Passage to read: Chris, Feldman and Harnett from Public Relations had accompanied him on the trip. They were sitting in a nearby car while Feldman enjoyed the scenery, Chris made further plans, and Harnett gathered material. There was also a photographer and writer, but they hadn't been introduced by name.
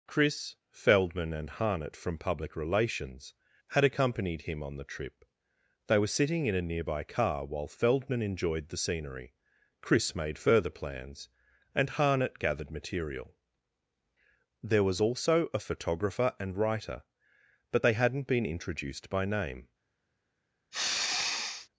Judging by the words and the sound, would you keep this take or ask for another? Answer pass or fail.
fail